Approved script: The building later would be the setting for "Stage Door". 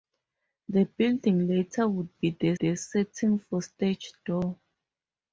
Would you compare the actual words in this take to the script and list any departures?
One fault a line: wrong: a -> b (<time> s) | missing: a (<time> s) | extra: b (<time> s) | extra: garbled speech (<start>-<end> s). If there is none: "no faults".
extra: the (2.5 s)